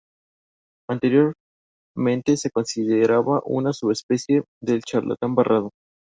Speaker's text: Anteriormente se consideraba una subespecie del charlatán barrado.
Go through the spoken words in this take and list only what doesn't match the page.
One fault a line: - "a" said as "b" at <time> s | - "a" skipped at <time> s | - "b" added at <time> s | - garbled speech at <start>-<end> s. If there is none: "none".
none